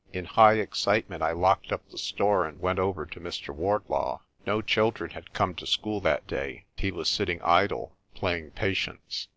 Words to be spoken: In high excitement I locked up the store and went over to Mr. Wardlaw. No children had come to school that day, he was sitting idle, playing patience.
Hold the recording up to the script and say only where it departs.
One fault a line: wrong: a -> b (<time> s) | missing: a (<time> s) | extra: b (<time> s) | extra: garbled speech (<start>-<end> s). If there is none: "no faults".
no faults